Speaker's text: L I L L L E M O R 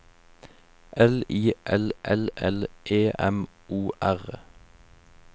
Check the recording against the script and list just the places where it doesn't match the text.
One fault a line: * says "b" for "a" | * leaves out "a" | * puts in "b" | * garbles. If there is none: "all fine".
all fine